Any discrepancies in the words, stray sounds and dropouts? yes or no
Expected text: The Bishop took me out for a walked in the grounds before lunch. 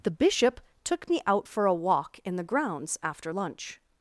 yes